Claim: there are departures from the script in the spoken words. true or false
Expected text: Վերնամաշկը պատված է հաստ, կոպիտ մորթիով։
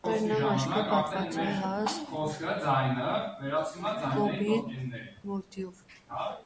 false